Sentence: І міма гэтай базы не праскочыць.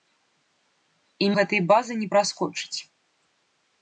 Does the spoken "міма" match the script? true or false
false